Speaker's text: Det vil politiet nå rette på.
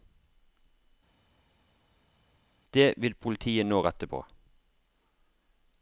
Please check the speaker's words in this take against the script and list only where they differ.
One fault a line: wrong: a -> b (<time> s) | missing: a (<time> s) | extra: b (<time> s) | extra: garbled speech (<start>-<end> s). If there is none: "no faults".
no faults